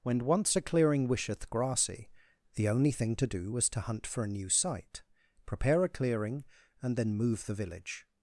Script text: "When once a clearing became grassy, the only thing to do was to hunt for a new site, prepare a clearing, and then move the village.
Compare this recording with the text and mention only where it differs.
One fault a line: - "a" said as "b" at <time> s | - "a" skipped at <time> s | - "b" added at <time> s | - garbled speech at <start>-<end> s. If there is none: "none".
- "became" said as "wisheth" at 1.1 s